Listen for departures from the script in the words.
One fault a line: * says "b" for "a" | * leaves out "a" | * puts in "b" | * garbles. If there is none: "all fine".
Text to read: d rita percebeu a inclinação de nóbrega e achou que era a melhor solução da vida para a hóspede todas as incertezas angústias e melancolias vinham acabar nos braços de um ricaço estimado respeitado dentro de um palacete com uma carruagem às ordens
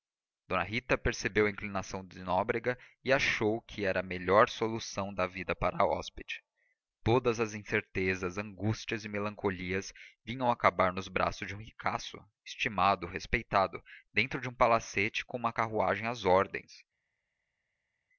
all fine